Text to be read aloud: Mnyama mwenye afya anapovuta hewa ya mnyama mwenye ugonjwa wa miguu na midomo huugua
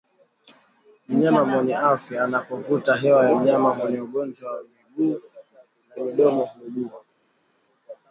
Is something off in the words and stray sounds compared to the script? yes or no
no